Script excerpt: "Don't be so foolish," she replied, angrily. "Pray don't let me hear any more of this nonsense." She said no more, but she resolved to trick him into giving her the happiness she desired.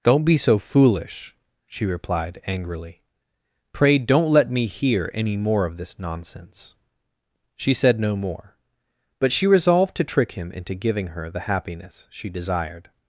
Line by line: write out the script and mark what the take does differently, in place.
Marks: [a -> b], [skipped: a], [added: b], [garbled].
"Don't be so foolish," she replied, angrily. "Pray don't let me hear any more of this nonsense." She said no more, but she resolved to trick him into giving her the happiness she desired.